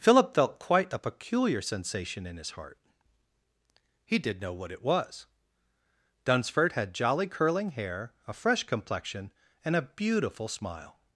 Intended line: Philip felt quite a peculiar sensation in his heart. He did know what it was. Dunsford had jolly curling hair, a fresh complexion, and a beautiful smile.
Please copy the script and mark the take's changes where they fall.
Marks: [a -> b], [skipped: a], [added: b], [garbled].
Philip felt quite a peculiar sensation in his heart. He did know what it was. Dunsford had jolly curling hair, a fresh complexion, and a beautiful smile.